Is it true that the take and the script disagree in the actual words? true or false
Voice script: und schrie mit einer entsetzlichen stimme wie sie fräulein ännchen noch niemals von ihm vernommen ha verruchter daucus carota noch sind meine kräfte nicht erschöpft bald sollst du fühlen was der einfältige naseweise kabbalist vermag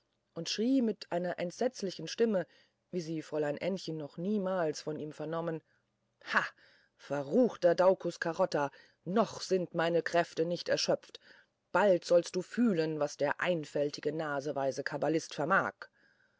false